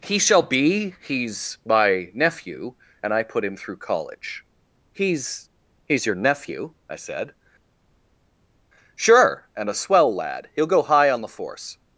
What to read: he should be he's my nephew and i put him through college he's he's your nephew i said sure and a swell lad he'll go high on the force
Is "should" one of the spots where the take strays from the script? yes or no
yes